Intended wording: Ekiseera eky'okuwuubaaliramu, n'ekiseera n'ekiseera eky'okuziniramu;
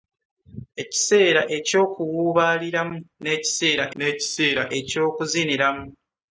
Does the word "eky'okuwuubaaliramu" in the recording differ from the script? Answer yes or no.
no